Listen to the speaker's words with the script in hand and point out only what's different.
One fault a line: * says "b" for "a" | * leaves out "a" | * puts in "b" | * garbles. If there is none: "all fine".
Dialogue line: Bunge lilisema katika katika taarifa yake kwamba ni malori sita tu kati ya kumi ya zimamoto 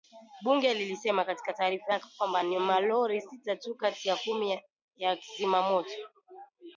* leaves out "katika"